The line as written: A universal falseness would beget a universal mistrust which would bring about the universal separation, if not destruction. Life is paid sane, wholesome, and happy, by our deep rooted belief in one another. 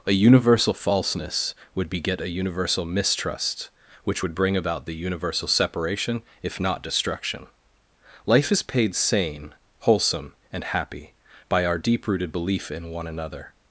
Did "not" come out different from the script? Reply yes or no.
no